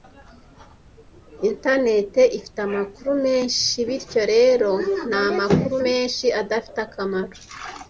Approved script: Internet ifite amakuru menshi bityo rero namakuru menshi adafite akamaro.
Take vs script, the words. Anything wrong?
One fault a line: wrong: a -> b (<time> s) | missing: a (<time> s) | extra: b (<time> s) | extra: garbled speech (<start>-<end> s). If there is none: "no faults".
no faults